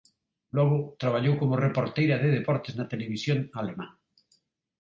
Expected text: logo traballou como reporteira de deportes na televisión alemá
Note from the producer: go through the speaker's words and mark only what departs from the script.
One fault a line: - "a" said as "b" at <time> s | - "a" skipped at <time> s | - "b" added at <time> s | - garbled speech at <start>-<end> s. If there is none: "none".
none